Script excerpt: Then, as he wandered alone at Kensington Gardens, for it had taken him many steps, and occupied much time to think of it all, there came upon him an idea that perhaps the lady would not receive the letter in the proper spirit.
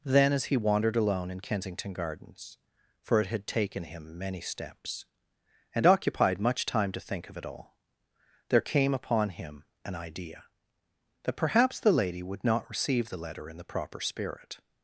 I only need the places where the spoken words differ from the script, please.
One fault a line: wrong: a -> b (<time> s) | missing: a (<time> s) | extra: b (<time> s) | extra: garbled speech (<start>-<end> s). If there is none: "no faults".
wrong: at -> in (1.3 s)